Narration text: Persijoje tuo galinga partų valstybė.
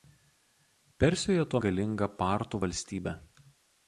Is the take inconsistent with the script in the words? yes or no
no